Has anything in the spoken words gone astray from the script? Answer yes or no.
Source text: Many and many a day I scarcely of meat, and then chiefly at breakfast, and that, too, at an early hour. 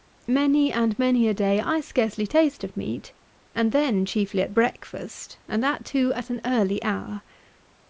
yes